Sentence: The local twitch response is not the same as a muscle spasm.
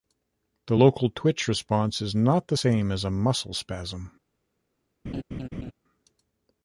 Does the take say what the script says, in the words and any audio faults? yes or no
no